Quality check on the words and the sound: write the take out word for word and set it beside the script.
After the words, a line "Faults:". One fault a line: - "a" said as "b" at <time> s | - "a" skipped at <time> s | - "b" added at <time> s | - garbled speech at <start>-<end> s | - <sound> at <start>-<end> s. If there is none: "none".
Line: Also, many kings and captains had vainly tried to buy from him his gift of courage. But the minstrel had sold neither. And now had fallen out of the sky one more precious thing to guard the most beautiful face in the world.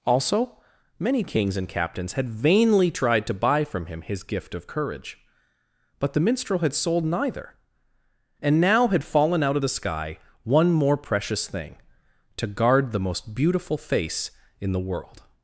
Also, many kings and captains had vainly tried to buy from him his gift of courage. But the minstrel had sold neither. And now had fallen out of the sky one more precious thing to guard the most beautiful face in the world.
Faults:
none